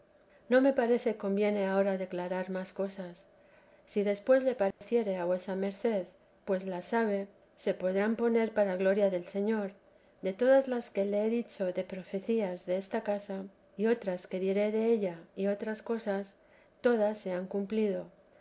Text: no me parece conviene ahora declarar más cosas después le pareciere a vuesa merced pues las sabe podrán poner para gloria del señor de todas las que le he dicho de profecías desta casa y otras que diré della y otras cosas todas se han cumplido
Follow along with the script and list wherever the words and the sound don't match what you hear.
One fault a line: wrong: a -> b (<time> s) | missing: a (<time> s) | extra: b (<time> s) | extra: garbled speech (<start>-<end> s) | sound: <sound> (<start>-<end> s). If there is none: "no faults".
extra: si (3.9 s)
sound: dropout (4.7-4.8 s)
extra: se (7.5 s)